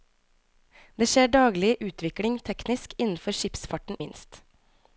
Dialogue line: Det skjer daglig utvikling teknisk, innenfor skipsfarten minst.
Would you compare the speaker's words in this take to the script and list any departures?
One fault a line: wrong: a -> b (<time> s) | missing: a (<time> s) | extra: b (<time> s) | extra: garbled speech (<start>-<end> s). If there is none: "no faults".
no faults